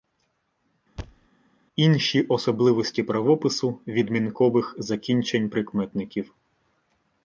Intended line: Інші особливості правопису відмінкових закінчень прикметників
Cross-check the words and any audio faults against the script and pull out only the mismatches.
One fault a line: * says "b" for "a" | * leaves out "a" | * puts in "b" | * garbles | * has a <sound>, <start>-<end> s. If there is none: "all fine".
* has a thud, 1.0-1.3 s